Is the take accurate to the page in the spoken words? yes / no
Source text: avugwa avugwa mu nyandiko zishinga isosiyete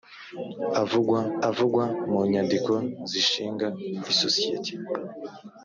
yes